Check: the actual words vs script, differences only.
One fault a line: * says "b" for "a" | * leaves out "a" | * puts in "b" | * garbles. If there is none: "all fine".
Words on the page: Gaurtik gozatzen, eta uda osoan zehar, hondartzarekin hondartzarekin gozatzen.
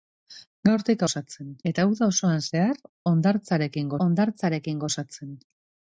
all fine